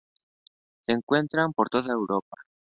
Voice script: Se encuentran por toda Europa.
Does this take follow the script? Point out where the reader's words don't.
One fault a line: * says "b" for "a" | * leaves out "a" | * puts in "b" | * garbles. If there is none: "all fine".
all fine